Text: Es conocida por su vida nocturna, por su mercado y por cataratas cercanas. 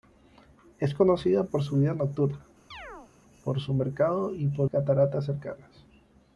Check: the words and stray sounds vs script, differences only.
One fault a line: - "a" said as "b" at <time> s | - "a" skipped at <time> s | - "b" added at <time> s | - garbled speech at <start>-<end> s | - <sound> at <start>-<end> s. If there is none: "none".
- chirp at 2.7-3.1 s